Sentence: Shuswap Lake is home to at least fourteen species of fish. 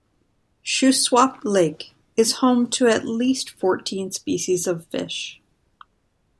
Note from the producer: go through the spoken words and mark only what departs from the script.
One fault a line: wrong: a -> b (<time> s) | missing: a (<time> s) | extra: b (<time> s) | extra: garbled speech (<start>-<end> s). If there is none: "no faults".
no faults